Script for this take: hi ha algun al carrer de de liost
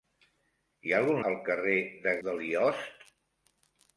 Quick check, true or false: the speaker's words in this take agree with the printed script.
true